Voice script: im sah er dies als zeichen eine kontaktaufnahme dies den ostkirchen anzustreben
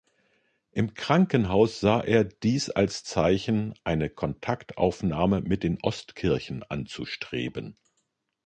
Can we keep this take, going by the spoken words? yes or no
no